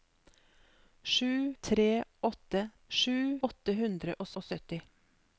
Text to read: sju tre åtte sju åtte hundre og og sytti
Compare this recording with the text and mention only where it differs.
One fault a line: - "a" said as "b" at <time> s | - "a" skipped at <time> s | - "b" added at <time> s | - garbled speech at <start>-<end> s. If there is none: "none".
none